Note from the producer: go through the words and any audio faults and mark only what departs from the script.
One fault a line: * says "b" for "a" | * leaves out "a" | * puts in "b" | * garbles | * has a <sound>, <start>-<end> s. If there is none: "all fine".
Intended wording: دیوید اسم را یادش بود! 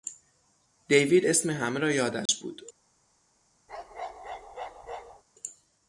* puts in "همه"
* has a dropout, 2.3-2.3 s
* has a bark, 3.7-5.2 s